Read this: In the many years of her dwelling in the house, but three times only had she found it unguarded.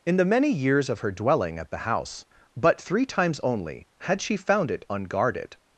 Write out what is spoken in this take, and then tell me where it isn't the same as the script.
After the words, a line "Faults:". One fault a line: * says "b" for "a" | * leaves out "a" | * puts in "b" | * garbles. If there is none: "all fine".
In the many years of her dwelling at the house, but three times only had she found it unguarded.
Faults:
* says "at" for "in"